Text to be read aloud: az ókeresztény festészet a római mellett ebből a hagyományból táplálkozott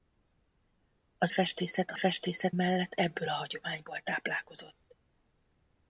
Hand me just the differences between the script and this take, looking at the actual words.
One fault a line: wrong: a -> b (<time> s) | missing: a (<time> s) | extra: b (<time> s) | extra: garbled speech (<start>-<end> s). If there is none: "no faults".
missing: ókeresztény (1.3 s)
wrong: római -> festészet (1.9 s)